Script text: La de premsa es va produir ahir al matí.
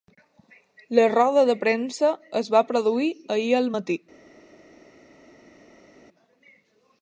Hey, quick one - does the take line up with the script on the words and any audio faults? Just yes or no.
no